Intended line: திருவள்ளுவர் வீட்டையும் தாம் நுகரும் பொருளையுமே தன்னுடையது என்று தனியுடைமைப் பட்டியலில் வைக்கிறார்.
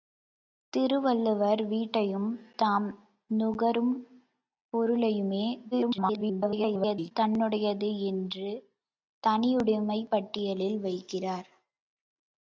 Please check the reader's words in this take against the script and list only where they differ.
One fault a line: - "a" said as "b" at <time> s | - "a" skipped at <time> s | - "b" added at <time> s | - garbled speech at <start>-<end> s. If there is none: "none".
- garbled speech at 5.7-7.1 s